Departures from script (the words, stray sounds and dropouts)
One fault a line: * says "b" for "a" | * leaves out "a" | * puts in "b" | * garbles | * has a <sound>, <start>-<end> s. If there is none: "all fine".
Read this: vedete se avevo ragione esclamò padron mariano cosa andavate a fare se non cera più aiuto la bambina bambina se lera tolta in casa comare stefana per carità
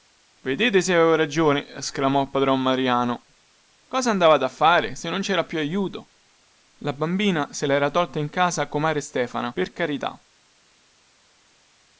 * leaves out "bambina"